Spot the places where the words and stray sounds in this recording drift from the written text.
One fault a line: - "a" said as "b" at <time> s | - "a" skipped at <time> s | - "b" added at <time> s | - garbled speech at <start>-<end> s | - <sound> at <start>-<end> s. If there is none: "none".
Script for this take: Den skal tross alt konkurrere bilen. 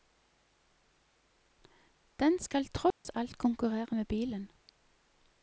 - dropout at 2.9-3.0 s
- "med" added at 3.9 s